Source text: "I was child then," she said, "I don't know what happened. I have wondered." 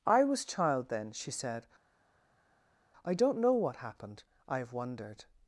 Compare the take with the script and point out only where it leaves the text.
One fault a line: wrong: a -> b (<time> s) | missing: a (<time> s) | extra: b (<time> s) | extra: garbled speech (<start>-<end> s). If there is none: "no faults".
no faults